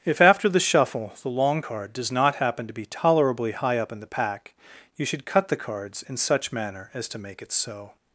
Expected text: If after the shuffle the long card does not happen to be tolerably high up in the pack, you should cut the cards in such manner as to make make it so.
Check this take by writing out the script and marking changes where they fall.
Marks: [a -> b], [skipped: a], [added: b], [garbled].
If after the shuffle the long card does not happen to be tolerably high up in the pack, you should cut the cards in such manner as to make [skipped: make] it so.